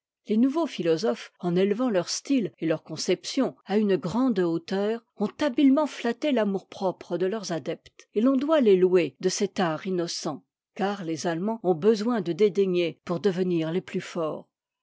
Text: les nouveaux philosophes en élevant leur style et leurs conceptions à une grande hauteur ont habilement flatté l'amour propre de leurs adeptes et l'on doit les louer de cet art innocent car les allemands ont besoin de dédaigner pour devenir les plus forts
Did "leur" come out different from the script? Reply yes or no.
no